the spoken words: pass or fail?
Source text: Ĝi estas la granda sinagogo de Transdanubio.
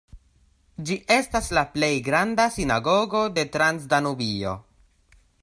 fail